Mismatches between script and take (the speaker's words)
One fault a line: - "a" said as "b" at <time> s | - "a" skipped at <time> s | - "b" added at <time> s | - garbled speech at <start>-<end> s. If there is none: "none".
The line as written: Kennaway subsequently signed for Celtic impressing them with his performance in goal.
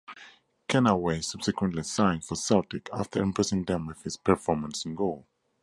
- "after" added at 2.9 s